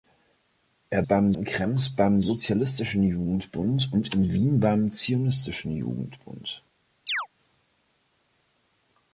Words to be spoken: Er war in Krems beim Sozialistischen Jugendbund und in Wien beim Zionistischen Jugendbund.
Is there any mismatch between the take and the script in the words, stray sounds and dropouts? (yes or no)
yes